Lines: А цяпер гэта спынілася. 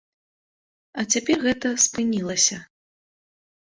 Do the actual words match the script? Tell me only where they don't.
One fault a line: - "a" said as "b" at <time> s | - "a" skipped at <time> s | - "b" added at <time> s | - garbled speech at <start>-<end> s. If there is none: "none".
none